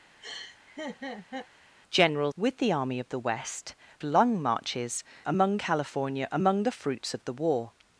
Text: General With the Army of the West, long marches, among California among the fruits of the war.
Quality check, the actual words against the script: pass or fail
pass